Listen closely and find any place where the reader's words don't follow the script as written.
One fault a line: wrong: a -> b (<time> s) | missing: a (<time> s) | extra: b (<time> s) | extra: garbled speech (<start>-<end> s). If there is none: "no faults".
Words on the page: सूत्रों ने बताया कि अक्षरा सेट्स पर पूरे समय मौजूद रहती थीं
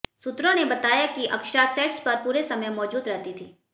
no faults